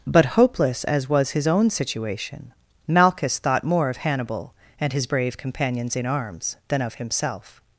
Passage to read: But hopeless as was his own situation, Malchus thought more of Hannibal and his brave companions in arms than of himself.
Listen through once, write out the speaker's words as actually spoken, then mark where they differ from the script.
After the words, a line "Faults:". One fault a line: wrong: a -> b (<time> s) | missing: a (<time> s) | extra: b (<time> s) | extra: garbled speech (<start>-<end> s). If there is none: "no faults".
But hopeless as was his own situation, Malchus thought more of Hannibal and his brave companions in arms than of himself.
Faults:
no faults